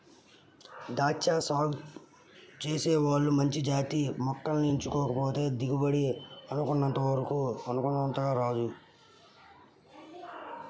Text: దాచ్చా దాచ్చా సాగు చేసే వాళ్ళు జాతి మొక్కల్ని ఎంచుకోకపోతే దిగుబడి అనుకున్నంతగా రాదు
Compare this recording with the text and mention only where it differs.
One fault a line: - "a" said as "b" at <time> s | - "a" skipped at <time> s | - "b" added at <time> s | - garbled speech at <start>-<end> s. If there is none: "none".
- "దాచ్చా" skipped at 1.3 s
- "మంచి" added at 3.3 s